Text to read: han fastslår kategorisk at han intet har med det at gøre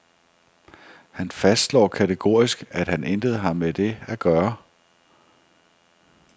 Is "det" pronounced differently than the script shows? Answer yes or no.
no